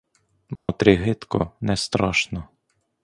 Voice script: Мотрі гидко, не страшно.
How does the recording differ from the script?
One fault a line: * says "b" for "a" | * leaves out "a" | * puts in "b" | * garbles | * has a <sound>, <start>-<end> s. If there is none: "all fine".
* has a dropout, 0.6-0.7 s